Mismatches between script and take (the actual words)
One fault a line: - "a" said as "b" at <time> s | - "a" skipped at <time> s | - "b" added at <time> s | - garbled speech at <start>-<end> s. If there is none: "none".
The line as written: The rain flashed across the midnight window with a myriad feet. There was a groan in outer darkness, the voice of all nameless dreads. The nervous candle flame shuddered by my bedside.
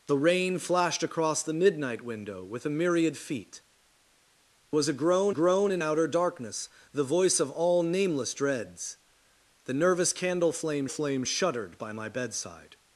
- "There" skipped at 3.6 s
- "groan" added at 5.3 s
- "flame" added at 10.9 s